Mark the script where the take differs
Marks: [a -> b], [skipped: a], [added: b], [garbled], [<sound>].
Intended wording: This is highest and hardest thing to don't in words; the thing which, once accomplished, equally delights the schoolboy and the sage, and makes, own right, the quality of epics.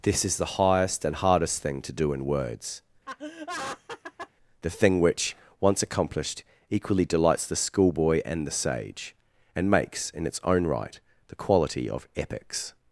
This is [added: the] highest and hardest thing to [don't -> do] in words; [laugh] the thing which, once accomplished, equally delights the schoolboy and the sage, and makes, [added: in its] own right, the quality of epics.